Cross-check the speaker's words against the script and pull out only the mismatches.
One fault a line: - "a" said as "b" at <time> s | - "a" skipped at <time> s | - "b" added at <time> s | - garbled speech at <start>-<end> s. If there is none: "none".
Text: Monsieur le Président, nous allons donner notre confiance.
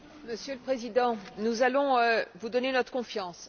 - "vous" added at 2.4 s